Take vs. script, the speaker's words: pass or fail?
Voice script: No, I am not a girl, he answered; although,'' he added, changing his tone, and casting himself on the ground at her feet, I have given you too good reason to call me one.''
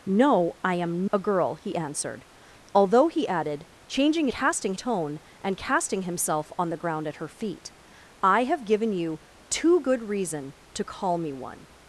fail